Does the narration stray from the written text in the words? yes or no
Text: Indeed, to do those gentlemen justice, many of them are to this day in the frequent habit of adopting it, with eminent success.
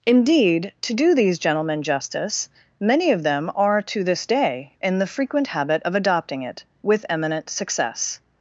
yes